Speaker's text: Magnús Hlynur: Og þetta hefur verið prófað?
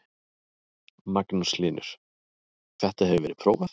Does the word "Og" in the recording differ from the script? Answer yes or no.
yes